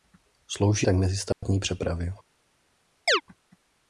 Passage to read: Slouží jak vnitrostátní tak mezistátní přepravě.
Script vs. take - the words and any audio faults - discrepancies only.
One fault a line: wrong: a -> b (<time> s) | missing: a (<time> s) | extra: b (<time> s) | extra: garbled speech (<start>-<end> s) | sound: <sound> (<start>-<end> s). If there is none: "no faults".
missing: jak vnitrostátní (0.9 s)
sound: dropout (1.3-1.4 s)
sound: chirp (3.1-3.2 s)